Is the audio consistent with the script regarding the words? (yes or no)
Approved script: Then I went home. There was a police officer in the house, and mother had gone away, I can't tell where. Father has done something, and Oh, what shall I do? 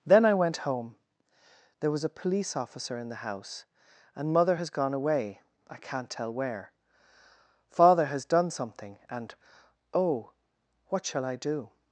no